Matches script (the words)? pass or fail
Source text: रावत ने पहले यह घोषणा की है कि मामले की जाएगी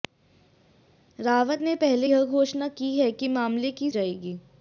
pass